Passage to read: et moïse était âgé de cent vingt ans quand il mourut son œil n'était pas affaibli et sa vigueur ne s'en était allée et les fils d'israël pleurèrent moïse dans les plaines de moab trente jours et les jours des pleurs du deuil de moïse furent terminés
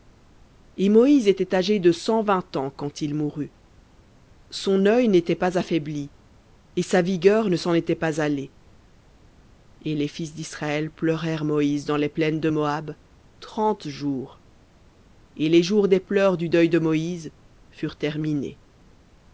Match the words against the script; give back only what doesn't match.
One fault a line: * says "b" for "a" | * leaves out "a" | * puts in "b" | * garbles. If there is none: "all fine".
* puts in "pas"